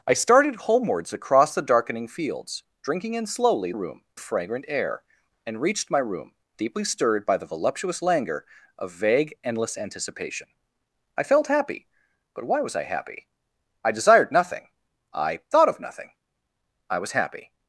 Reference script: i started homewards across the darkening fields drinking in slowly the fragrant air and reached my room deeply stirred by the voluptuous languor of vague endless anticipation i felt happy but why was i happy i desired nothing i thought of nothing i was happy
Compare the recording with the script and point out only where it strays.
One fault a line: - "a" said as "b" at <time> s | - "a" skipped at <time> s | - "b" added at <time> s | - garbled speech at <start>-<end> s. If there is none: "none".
- "the" said as "room" at 3.7 s